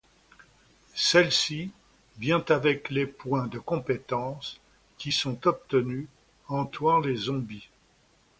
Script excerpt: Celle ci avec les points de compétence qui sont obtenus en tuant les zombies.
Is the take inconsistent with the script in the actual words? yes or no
yes